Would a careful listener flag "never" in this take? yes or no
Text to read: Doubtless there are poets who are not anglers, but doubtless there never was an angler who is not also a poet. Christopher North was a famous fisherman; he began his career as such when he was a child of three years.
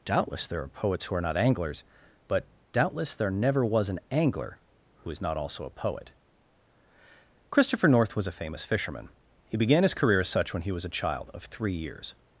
no